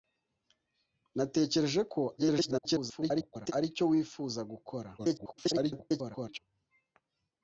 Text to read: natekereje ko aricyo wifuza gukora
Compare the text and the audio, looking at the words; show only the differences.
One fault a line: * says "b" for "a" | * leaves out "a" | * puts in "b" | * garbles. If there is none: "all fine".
* garbles
* garbles